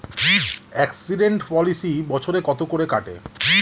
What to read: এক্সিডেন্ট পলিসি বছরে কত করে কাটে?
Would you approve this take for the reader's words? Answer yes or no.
yes